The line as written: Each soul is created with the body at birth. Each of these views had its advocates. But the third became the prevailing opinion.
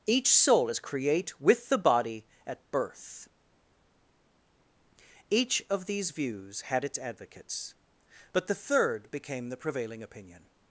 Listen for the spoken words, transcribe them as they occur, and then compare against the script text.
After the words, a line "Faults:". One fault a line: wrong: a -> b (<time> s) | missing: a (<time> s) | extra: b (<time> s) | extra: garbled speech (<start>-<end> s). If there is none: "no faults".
Each soul is create with the body at birth. Each of these views had its advocates. But the third became the prevailing opinion.
Faults:
wrong: created -> create (0.8 s)